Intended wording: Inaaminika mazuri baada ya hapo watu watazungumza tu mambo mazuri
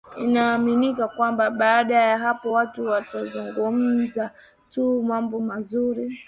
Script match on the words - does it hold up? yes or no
no